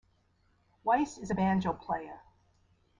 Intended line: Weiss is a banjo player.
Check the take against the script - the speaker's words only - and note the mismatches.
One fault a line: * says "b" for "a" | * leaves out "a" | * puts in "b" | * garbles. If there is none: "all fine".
all fine